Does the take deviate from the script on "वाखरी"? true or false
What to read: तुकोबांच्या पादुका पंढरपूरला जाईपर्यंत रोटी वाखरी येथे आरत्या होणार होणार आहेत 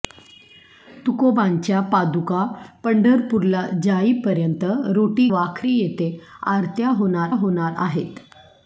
false